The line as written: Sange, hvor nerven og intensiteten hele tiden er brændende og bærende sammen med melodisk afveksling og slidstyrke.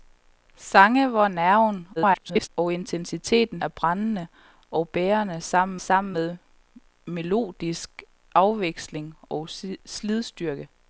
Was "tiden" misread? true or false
true